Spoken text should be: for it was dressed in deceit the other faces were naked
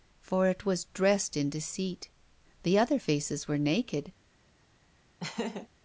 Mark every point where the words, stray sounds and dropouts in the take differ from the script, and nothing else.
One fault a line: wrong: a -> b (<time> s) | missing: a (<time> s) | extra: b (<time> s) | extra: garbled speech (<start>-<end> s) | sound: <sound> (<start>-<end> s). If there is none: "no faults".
sound: laugh (5.2-5.7 s)